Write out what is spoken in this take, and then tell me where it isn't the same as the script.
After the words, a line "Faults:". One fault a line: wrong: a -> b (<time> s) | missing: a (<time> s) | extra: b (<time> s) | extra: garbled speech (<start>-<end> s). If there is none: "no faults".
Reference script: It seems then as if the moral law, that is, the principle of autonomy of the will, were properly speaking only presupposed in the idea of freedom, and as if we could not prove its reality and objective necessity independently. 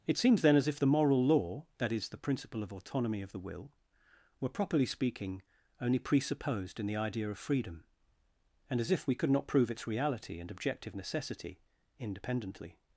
It seems then as if the moral law, that is, the principle of autonomy of the will, were properly speaking only presupposed in the idea of freedom, and as if we could not prove its reality and objective necessity independently.
Faults:
no faults